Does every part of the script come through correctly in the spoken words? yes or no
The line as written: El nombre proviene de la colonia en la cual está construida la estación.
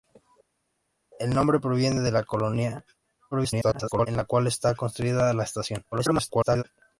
no